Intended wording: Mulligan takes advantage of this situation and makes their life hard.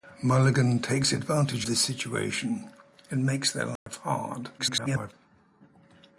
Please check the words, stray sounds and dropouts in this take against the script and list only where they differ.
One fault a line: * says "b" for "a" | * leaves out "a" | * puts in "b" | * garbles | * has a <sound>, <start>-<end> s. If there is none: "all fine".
* leaves out "of"
* has a dropout, 3.8-3.9 s
* garbles